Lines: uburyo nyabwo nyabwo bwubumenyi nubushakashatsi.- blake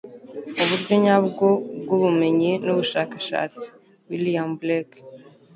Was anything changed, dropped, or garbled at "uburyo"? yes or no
no